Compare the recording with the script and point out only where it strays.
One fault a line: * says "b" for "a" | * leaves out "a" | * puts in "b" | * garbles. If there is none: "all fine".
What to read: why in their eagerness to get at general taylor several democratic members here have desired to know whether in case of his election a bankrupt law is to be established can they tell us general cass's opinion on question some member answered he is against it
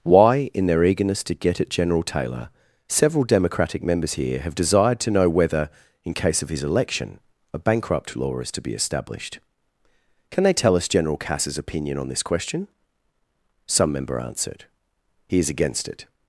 * puts in "this"